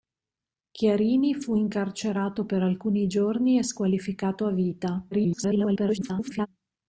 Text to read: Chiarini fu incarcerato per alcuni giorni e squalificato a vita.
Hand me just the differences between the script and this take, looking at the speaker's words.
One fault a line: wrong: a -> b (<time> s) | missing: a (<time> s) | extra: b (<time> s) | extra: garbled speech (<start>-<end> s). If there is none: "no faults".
extra: garbled speech (5.1-6.5 s)